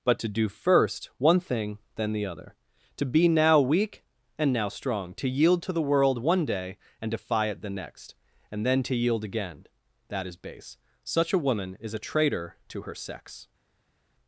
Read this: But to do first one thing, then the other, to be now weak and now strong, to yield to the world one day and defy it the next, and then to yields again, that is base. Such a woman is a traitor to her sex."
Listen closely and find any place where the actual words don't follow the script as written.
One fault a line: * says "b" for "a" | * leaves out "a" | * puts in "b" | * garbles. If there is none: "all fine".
* says "yield" for "yields"